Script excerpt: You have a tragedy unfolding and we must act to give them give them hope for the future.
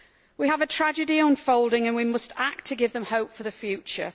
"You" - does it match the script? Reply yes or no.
no